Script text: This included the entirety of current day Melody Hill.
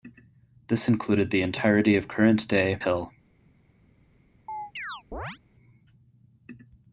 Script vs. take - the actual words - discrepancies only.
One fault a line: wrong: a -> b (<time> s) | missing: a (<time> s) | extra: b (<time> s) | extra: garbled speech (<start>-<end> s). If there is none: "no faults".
missing: Melody (2.8 s)